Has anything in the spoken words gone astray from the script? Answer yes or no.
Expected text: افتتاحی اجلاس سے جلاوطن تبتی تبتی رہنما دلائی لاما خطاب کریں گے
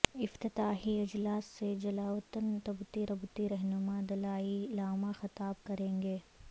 no